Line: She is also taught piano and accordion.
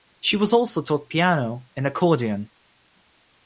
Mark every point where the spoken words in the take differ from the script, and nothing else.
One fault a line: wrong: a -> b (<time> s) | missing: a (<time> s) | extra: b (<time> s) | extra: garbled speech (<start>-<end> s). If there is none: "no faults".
wrong: is -> was (0.3 s)